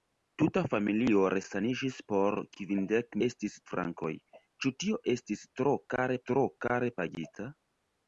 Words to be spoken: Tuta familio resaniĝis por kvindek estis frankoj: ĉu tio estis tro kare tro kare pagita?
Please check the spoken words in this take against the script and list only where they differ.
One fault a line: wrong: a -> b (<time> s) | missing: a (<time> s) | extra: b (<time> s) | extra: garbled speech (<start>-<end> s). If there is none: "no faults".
no faults